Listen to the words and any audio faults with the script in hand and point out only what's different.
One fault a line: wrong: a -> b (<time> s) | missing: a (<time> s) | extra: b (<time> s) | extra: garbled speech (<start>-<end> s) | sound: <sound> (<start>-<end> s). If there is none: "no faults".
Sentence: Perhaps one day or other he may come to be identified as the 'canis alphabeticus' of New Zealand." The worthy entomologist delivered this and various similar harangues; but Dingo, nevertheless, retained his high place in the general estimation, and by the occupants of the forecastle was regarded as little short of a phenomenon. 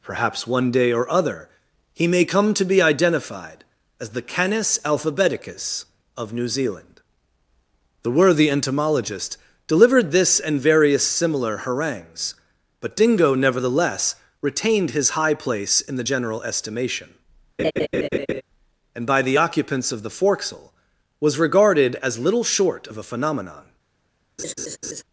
sound: laugh (17.6-18.4 s)
sound: laugh (24.4-25.0 s)